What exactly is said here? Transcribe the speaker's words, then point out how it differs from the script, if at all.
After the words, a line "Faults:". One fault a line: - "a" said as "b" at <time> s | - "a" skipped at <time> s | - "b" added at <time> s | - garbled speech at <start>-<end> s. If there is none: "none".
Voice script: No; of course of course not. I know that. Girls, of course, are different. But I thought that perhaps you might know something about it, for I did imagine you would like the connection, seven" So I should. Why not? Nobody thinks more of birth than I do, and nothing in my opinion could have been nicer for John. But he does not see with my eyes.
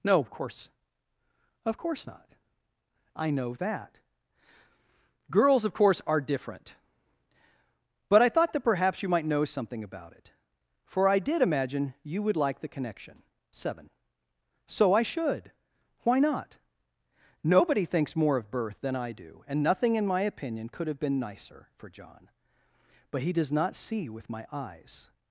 No; of course of course not. I know that. Girls, of course, are different. But I thought that perhaps you might know something about it, for I did imagine you would like the connection, seven" So I should. Why not? Nobody thinks more of birth than I do, and nothing in my opinion could have been nicer for John. But he does not see with my eyes.
Faults:
none